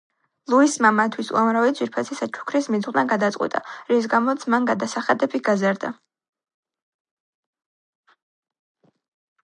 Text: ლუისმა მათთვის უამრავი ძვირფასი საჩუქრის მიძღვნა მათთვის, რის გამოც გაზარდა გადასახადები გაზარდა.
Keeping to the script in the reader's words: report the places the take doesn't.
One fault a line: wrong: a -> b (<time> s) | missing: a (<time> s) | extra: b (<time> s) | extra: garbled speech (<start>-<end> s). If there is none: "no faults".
wrong: მათთვის -> გადაწყვიტა (3.1 s)
wrong: გაზარდა -> მან (4.5 s)